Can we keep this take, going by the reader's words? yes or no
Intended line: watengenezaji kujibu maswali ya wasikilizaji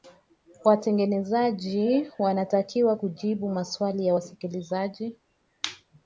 no